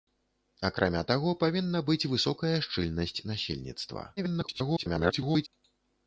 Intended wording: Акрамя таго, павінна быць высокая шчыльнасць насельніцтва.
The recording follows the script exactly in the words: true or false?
false